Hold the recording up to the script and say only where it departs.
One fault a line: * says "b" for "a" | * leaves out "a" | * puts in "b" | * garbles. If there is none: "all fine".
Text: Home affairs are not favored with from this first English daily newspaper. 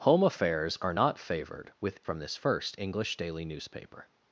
all fine